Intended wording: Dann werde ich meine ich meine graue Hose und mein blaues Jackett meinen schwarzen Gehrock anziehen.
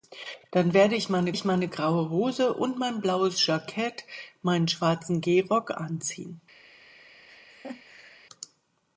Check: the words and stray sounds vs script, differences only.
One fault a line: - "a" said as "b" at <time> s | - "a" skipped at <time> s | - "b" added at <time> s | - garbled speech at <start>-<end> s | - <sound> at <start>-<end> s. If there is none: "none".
- laugh at 7.3-8.3 s